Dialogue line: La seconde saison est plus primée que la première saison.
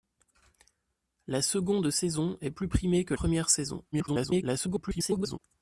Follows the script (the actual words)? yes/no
no